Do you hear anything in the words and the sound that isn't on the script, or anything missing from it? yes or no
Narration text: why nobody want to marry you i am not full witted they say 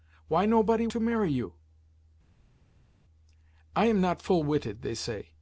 yes